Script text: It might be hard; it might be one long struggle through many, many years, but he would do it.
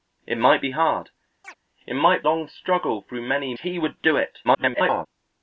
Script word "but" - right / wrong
wrong